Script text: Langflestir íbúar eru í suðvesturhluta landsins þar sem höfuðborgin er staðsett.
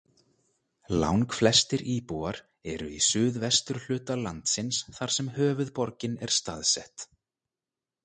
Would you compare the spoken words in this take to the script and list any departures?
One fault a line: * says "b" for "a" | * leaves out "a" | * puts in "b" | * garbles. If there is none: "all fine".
all fine